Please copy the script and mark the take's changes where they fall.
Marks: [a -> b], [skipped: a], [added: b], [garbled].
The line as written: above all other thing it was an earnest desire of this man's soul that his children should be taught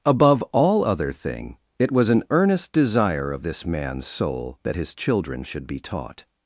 above all other thing it was an earnest desire of this man's soul that his children should be taught